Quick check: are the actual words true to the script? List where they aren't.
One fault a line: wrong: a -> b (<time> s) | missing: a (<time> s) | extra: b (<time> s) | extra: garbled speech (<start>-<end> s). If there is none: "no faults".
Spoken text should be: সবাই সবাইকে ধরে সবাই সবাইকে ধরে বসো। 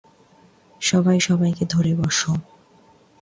missing: সবাই সবাইকে ধরে (1.9 s)